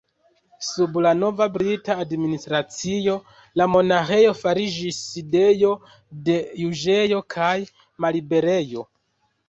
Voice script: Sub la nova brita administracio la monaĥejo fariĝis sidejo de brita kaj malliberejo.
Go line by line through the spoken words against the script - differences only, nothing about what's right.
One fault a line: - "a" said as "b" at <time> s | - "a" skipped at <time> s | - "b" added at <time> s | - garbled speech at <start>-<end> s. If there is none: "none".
- "brita" said as "juĝejo" at 6.7 s